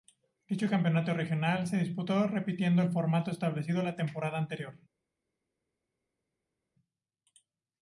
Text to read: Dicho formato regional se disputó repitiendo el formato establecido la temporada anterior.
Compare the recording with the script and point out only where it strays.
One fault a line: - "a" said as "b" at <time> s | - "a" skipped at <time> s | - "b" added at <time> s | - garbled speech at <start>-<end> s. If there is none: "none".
- "formato" said as "campeonato" at 0.7 s